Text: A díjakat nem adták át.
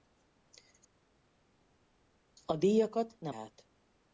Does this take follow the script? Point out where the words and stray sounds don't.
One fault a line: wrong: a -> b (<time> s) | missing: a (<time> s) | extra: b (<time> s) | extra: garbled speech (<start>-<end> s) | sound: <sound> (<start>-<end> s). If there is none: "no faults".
missing: adták (3.3 s)